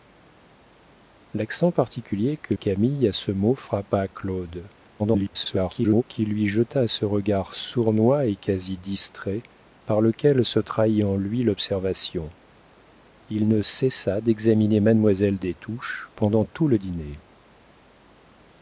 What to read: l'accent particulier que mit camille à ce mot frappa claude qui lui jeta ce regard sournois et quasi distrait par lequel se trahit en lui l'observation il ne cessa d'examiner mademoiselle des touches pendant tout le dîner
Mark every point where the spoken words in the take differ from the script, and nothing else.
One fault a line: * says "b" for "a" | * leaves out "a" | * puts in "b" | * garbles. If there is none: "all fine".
* leaves out "mit"
* garbles